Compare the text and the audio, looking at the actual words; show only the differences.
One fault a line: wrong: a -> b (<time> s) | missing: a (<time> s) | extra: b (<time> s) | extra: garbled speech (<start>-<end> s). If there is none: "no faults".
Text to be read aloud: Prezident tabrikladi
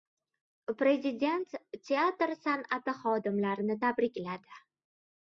extra: teatr san'ati xodimlarini (1.9 s)